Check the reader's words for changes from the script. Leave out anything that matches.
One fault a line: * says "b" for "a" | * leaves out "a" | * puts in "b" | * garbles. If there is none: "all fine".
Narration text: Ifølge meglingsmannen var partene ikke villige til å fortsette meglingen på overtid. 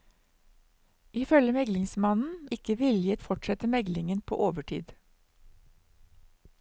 * leaves out "var partene"
* leaves out "til"